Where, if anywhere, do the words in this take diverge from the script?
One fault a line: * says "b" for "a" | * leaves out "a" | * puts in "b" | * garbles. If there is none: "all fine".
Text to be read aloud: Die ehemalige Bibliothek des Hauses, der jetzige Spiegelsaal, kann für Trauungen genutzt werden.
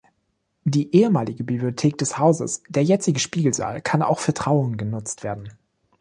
* puts in "auch"